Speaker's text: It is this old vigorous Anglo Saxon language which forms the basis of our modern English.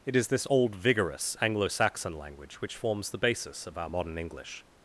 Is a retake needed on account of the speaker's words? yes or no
no